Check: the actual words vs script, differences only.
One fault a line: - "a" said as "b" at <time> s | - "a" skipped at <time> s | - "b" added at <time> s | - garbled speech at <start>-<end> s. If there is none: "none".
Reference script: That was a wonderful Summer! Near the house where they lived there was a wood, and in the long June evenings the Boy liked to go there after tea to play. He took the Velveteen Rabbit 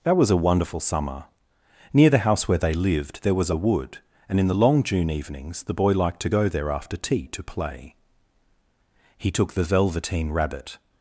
none